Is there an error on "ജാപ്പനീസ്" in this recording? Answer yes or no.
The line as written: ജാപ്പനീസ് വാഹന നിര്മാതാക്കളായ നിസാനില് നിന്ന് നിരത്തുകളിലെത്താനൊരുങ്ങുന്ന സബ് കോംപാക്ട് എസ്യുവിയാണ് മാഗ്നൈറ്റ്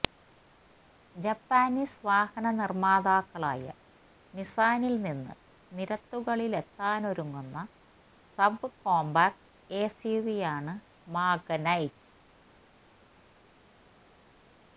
no